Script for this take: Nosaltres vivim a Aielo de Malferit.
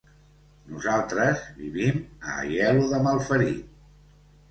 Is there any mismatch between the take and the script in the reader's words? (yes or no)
no